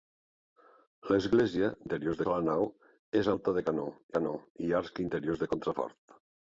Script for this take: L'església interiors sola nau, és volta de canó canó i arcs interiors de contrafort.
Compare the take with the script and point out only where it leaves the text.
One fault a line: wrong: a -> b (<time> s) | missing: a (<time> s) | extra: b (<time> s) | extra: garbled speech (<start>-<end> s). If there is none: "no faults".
no faults